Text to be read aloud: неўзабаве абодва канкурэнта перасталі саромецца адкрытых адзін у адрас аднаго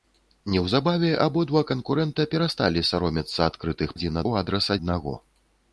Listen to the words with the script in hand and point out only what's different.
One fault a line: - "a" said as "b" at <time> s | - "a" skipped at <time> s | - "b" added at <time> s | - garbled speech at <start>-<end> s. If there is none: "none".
none